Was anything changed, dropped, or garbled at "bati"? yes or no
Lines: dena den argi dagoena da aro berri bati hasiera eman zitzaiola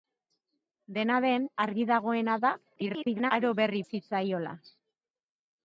yes